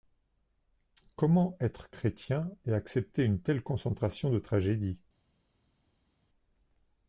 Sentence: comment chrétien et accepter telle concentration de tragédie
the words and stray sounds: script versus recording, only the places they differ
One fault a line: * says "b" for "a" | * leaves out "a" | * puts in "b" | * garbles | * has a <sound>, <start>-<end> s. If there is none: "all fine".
* puts in "être"
* puts in "une"